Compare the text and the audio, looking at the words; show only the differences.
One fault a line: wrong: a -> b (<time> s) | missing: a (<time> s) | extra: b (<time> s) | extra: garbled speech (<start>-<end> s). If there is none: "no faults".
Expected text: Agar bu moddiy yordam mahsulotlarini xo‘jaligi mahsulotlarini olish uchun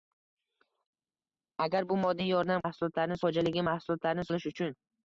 no faults